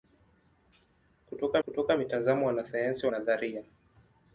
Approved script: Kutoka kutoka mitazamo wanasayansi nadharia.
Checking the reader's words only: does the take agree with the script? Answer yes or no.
yes